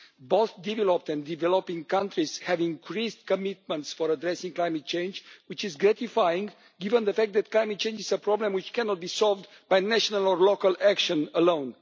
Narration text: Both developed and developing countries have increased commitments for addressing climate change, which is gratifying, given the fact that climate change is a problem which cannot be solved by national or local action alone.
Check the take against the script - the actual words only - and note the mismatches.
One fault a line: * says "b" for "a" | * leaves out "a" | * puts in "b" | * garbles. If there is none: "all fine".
all fine